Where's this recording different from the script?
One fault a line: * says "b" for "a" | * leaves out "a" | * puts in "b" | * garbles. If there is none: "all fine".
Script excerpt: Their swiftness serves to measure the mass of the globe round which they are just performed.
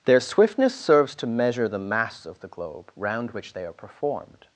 * leaves out "just"